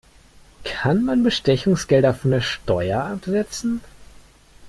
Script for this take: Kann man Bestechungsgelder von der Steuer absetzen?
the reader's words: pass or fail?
pass